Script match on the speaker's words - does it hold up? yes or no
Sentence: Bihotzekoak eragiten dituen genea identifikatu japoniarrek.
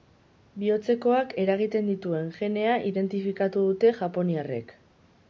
no